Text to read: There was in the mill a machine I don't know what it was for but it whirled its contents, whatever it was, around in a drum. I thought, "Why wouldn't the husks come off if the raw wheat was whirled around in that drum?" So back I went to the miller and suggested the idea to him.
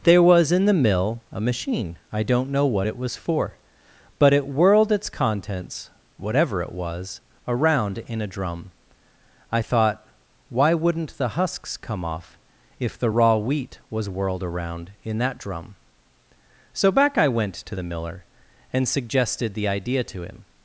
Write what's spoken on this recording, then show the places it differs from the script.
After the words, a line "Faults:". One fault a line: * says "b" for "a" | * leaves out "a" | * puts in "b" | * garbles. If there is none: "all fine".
There was in the mill a machine I don't know what it was for but it whirled its contents, whatever it was, around in a drum. I thought, "Why wouldn't the husks come off if the raw wheat was whirled around in that drum?" So back I went to the miller and suggested the idea to him.
Faults:
all fine